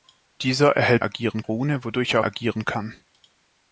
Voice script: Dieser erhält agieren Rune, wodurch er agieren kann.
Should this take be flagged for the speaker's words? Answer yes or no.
no